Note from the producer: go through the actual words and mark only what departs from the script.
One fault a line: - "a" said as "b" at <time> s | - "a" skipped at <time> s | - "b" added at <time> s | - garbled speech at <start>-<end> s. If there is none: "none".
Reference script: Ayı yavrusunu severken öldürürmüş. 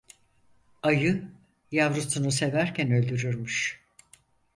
none